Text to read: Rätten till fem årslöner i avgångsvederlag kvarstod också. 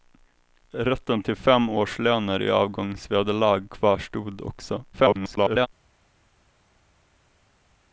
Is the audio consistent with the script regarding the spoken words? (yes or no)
no